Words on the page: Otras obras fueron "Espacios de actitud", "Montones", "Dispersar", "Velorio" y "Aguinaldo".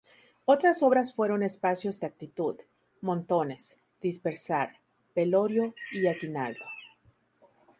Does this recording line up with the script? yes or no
yes